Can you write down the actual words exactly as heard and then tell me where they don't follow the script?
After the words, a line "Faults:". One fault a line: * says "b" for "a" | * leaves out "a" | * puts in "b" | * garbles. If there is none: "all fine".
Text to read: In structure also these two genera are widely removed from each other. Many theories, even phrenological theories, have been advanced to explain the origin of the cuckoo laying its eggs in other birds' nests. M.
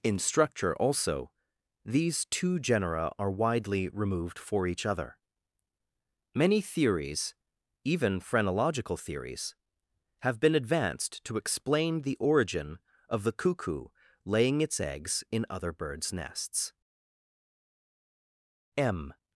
In structure also these two genera are widely removed for each other. Many theories, even phrenological theories, have been advanced to explain the origin of the cuckoo laying its eggs in other birds' nests. M.
Faults:
* says "for" for "from"